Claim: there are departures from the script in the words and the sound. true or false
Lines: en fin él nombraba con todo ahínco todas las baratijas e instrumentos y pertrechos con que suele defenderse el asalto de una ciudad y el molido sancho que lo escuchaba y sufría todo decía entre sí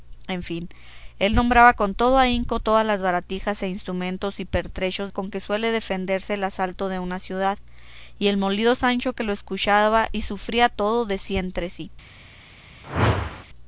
true